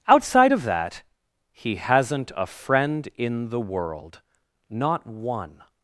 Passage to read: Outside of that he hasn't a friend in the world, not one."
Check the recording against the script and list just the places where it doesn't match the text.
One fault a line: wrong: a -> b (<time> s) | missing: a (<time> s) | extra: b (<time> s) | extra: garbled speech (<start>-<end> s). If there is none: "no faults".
no faults